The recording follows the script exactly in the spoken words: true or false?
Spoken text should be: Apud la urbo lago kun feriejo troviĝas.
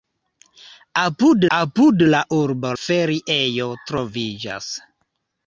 false